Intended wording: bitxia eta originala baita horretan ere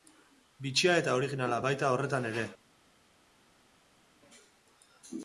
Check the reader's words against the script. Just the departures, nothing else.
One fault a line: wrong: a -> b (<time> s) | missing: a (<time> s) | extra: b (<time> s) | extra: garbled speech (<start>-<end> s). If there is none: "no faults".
no faults